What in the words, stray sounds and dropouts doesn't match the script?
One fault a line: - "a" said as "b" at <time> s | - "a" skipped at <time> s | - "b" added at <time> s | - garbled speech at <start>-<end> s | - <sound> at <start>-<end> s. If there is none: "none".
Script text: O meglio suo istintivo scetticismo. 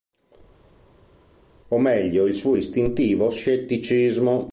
- "il" added at 2.3 s